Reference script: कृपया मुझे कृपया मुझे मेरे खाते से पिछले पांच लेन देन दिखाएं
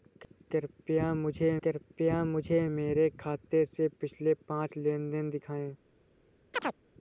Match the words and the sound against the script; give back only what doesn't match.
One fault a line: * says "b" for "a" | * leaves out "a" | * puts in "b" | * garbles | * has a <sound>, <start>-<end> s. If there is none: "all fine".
* has a chirp, 6.5-6.8 s